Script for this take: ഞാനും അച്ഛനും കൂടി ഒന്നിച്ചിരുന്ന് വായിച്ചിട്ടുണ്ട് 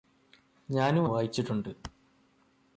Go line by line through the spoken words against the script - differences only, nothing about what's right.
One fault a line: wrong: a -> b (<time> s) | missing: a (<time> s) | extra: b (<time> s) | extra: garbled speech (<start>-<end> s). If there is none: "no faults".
missing: അച്ഛനും കൂടി ഒന്നിച്ചിരുന്ന് (1.1 s)